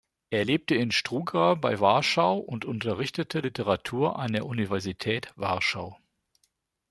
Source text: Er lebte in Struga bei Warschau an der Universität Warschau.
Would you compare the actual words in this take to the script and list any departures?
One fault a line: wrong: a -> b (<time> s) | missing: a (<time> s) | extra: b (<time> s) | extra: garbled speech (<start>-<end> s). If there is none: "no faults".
extra: und unterrichtete Literatur (2.4 s)